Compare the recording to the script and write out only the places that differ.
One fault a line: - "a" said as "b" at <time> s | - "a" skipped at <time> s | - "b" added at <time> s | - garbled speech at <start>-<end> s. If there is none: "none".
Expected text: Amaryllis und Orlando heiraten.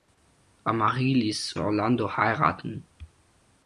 - "und" skipped at 1.5 s